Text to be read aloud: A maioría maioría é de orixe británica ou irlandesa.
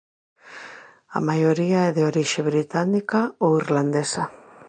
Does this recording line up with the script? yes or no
no